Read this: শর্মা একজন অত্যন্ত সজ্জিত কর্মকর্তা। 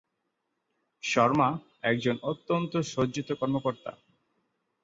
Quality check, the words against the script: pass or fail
pass